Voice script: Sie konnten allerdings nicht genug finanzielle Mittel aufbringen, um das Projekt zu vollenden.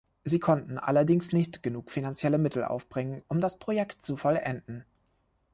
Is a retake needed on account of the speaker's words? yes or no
no